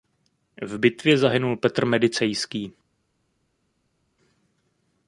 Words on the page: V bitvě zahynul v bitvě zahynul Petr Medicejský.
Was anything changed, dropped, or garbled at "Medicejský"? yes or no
no